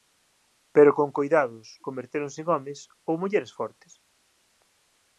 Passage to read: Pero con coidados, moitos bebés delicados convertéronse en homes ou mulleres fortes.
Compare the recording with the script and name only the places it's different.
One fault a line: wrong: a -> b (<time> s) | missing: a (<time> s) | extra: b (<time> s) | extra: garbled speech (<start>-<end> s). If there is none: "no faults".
missing: moitos bebés delicados (1.7 s)